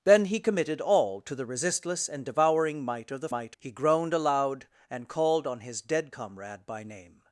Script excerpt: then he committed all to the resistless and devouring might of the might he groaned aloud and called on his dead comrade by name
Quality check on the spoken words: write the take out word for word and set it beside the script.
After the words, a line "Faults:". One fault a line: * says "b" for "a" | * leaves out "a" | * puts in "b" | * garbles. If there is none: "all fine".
then he committed all to the resistless and devouring might of the might he groaned aloud and called on his dead comrade by name
Faults:
all fine